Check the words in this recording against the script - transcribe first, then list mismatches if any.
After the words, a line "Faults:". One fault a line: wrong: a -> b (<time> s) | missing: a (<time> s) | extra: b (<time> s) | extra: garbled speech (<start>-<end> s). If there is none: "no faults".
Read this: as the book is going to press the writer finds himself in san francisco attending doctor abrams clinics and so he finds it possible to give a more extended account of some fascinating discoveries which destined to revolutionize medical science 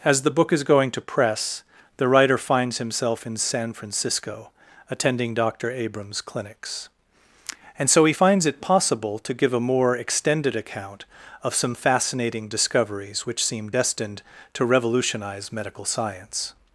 as the book is going to press the writer finds himself in san francisco attending doctor abrams clinics and so he finds it possible to give a more extended account of some fascinating discoveries which seem destined to revolutionize medical science
Faults:
extra: seem (13.4 s)